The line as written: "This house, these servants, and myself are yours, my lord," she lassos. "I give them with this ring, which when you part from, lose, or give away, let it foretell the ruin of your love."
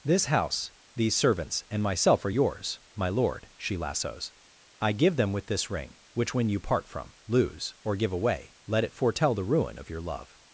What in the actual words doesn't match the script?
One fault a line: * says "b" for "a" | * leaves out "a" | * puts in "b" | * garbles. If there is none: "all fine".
all fine